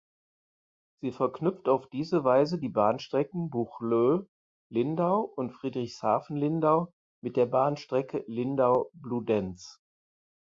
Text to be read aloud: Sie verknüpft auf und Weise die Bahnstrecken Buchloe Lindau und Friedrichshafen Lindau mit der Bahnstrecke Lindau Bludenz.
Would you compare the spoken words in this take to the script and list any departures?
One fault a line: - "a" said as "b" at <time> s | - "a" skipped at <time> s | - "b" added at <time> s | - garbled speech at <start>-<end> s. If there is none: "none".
- "und" said as "diese" at 1.9 s